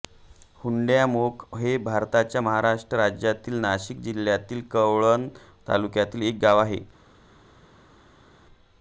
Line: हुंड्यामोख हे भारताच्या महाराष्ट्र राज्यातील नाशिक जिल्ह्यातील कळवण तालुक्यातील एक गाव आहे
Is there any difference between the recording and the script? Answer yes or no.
no